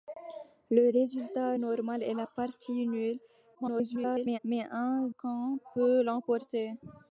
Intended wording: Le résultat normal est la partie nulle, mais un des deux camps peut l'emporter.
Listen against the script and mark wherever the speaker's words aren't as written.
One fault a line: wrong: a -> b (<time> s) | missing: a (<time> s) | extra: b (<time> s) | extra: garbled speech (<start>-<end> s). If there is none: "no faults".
extra: garbled speech (3.5-4.4 s)
missing: des deux (5.1 s)